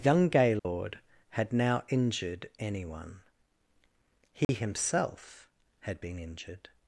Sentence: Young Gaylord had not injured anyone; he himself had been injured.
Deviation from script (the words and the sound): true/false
true